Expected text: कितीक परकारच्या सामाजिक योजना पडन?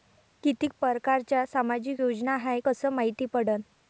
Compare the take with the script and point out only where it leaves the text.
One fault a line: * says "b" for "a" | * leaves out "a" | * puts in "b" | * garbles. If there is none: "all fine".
* puts in "हाय कस मायती"